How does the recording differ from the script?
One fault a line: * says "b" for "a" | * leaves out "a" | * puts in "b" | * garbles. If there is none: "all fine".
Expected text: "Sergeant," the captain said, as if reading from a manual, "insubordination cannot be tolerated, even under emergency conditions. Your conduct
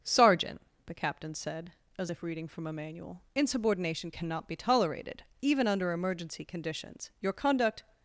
all fine